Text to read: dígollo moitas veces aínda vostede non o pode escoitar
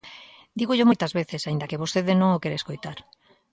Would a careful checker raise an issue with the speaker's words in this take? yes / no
yes